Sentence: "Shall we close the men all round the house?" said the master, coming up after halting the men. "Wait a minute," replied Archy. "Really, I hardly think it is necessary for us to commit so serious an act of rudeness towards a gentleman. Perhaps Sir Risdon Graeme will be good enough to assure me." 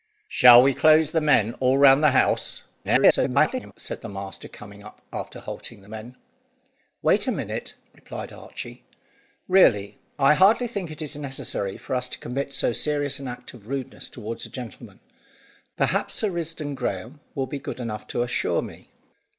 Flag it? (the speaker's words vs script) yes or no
yes